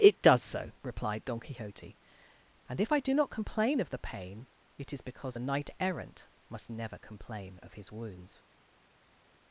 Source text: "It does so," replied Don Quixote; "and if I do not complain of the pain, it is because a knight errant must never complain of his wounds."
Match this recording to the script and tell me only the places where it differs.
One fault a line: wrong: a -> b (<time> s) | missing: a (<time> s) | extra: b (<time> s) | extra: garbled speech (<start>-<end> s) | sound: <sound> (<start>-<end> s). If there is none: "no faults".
no faults